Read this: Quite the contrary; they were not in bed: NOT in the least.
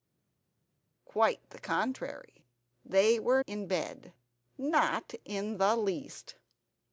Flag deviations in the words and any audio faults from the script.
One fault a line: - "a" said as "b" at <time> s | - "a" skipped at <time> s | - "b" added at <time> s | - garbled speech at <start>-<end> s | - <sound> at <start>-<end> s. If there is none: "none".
- "not" skipped at 3.4 s